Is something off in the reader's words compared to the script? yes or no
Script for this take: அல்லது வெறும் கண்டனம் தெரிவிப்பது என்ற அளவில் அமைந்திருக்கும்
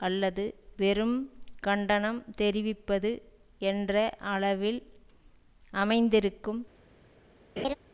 no